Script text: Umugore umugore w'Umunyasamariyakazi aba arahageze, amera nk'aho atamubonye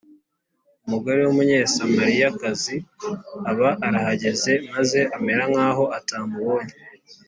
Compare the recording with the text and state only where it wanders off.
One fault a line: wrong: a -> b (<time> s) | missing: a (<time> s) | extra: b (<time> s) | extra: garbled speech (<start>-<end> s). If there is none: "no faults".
missing: umugore (1.2 s)
extra: maze (4.7 s)